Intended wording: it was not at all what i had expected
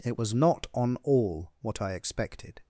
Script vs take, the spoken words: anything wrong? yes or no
yes